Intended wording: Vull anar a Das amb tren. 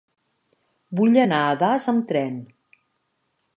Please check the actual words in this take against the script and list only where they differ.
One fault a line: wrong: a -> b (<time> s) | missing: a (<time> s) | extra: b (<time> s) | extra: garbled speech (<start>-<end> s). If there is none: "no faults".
no faults